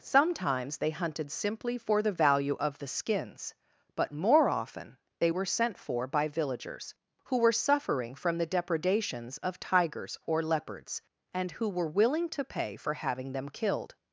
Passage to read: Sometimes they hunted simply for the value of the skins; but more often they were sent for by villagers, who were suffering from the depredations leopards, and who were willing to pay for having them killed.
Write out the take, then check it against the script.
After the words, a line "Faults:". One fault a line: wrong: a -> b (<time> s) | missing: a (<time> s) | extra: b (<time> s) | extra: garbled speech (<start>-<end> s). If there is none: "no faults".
Sometimes they hunted simply for the value of the skins; but more often they were sent for by villagers, who were suffering from the depredations of tigers or leopards, and who were willing to pay for having them killed.
Faults:
extra: of tigers or (9.4 s)